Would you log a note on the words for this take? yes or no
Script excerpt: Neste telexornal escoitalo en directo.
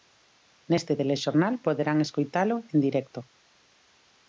yes